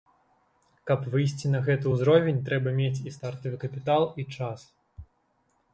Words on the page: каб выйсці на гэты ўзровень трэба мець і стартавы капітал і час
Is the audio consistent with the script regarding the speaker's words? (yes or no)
yes